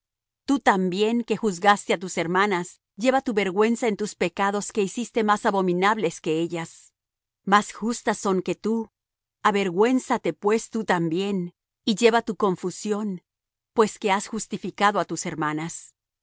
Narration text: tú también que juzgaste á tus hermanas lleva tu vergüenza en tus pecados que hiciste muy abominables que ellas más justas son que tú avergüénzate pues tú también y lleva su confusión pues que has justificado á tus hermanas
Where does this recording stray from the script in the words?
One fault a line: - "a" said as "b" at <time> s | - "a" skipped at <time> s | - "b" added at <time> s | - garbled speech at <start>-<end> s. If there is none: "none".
- "muy" said as "más" at 5.2 s
- "su" said as "tu" at 12.2 s